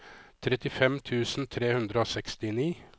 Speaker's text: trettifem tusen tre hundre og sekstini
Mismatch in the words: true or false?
false